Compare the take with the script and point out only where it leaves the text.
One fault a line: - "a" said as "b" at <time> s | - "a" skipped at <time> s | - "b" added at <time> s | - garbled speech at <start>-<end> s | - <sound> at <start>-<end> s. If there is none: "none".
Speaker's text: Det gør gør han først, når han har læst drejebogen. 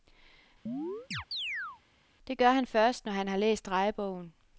- chirp at 0.7-1.8 s
- "gør" skipped at 2.5 s